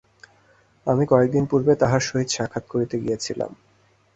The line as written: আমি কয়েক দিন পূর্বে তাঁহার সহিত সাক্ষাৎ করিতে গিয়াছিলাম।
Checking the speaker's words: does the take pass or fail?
pass